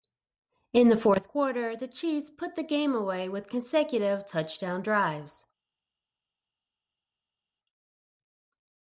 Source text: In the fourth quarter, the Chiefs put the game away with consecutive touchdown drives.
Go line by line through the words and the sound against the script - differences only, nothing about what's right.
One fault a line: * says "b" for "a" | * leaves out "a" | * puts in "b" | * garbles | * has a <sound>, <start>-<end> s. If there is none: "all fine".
all fine